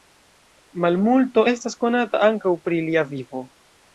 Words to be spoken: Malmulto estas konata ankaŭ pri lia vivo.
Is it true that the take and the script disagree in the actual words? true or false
false